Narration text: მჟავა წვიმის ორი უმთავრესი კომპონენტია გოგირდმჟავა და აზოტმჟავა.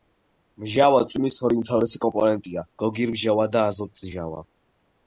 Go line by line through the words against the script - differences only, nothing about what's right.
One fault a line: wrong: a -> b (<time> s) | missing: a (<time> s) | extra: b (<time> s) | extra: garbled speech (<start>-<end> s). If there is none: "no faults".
no faults